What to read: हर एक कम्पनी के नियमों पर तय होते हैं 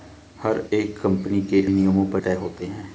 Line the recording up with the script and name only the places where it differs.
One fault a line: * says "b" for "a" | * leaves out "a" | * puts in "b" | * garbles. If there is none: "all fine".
all fine